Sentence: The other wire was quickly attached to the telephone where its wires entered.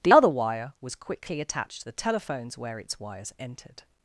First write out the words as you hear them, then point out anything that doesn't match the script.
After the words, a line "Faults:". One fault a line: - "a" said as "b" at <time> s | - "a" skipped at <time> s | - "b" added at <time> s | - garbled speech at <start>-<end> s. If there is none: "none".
The other wire was quickly attached to the telephones where its wires entered.
Faults:
- "telephone" said as "telephones" at 1.9 s